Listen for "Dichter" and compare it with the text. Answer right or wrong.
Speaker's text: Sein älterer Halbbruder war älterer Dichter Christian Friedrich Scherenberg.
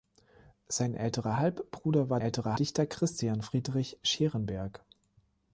right